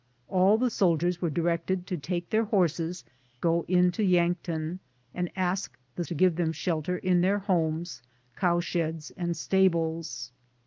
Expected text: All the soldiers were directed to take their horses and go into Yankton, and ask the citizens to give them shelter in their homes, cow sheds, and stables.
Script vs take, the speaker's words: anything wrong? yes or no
yes